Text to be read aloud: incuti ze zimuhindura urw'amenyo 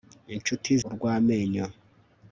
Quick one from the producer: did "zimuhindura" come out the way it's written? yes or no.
no